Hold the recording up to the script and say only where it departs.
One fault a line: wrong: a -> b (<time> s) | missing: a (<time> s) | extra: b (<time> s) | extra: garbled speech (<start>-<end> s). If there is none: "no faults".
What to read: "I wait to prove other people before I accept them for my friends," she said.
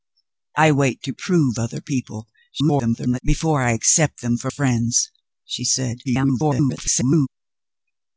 extra: garbled speech (2.5-3.2 s)
missing: my (4.5 s)
extra: garbled speech (6.0-7.3 s)